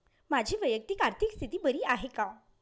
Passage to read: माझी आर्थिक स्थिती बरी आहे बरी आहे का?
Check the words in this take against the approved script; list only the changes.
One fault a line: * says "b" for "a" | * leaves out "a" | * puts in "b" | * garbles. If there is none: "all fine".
* puts in "वैयक्तिक"
* leaves out "बरी आहे"